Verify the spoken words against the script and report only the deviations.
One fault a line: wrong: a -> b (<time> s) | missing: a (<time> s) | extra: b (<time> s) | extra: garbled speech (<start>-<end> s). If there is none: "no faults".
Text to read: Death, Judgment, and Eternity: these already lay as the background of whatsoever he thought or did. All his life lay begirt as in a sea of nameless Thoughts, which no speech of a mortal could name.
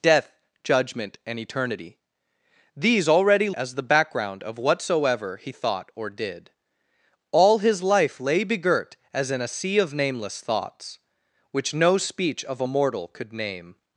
missing: lay (3.5 s)